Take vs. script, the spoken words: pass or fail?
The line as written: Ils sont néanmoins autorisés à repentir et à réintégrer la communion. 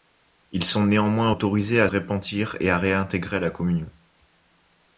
pass